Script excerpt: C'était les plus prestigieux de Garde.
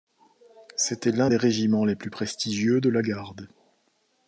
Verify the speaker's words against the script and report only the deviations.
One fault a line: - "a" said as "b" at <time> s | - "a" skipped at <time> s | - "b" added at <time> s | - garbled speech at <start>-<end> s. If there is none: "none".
- "l'un des régiments" added at 1.1 s
- "la" added at 2.9 s